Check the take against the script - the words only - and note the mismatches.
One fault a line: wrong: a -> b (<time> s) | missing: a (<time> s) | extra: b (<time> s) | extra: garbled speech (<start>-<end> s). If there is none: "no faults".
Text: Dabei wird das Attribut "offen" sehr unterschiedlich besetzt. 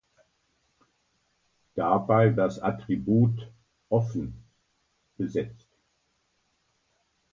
missing: wird (2.4 s)
missing: sehr unterschiedlich (4.4 s)